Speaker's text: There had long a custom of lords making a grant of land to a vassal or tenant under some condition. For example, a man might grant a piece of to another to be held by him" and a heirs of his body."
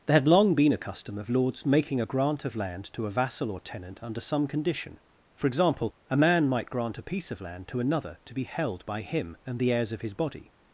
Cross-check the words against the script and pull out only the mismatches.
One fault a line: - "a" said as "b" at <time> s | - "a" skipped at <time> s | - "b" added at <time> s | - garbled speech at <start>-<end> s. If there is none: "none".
- "been" added at 0.6 s
- "land" added at 7.4 s
- "a" said as "the" at 9.6 s